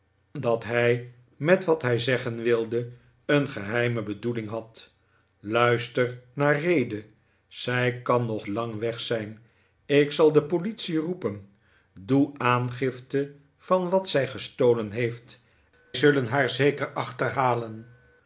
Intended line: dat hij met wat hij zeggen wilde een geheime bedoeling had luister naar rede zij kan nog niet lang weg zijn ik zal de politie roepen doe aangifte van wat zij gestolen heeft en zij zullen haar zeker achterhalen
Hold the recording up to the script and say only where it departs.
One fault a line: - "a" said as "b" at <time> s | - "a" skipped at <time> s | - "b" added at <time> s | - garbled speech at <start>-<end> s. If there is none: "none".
- "niet" skipped at 8.5 s
- "en zij" skipped at 15.4 s